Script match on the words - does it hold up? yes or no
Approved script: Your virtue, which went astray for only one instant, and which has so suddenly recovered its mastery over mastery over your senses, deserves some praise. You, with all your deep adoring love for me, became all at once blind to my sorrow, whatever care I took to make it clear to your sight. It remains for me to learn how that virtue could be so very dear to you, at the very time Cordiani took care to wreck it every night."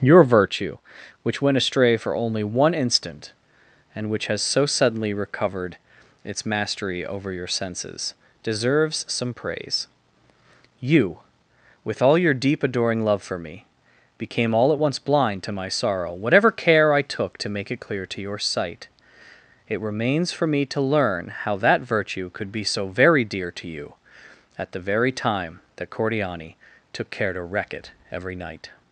no